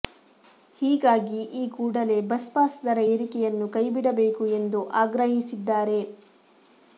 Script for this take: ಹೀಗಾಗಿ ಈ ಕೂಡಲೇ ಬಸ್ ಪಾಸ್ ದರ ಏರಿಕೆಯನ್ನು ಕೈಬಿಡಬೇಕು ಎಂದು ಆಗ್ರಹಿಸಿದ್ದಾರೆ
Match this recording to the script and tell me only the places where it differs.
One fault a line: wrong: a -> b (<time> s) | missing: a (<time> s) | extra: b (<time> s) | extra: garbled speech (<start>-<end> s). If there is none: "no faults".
no faults